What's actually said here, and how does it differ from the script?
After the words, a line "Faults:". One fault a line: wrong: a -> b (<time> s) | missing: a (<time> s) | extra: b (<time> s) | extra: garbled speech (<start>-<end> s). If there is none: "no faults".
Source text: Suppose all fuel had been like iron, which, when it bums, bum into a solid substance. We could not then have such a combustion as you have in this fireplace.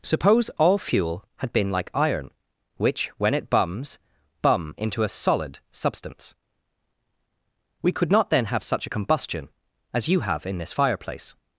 Suppose all fuel had been like iron, which, when it bums, bum into a solid substance. We could not then have such a combustion as you have in this fireplace.
Faults:
no faults